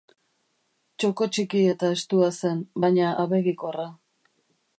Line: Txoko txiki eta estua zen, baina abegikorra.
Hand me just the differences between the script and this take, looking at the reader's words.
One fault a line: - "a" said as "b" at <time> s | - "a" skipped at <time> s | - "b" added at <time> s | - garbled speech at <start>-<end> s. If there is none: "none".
none